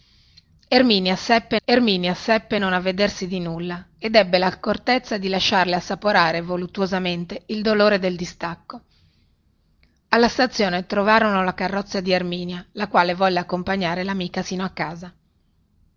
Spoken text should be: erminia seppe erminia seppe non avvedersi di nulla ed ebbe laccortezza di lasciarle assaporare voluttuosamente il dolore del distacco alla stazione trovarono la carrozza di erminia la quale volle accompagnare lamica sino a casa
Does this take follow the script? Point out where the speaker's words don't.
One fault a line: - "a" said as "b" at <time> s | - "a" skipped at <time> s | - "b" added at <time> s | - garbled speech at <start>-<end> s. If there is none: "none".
none